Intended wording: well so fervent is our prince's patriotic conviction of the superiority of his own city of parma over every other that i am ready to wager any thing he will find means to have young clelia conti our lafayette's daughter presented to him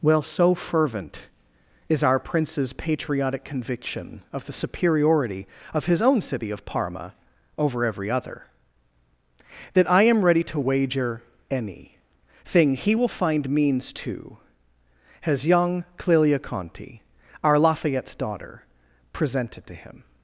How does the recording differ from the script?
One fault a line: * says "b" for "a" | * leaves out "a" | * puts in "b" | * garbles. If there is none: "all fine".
* says "has" for "have"